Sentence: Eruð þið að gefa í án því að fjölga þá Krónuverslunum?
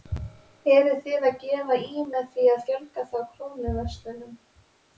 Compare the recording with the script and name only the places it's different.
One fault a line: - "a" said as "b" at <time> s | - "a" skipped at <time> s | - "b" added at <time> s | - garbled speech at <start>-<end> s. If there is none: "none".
- "án" said as "með" at 2.1 s